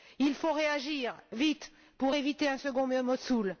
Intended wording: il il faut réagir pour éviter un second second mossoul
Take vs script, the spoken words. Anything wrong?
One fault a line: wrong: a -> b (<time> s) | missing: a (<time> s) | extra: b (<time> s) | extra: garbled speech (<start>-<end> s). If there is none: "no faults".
missing: il (0.3 s)
extra: vite (1.3 s)
missing: second (2.9 s)